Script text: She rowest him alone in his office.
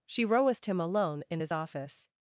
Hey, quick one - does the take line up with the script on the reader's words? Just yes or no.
yes